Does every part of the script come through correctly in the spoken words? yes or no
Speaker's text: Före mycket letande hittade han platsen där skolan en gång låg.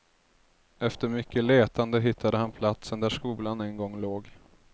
no